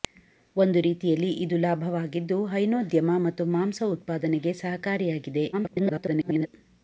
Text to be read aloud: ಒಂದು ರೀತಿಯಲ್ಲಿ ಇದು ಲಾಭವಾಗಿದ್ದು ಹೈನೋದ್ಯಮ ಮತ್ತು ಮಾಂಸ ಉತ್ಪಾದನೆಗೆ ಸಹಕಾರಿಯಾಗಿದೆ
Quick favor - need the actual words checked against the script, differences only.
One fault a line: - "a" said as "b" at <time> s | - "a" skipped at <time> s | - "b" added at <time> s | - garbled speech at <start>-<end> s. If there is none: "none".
- garbled speech at 5.5-6.5 s